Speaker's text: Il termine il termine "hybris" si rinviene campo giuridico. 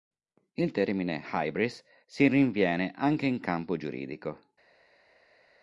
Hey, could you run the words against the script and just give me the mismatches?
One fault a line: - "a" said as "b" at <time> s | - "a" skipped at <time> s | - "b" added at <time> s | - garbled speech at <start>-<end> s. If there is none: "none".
- "il termine" skipped at 1.2 s
- "anche in" added at 2.9 s